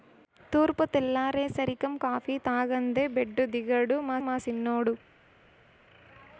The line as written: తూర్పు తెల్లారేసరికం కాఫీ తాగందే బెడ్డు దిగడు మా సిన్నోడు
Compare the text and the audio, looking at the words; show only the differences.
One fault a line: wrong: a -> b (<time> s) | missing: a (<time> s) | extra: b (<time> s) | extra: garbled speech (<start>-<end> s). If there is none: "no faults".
extra: మా (4.2 s)